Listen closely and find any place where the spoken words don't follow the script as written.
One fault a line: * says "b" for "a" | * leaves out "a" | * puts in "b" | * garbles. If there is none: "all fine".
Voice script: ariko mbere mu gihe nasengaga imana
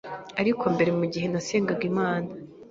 all fine